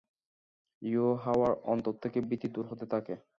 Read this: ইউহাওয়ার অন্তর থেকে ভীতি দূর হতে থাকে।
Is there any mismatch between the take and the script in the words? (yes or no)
no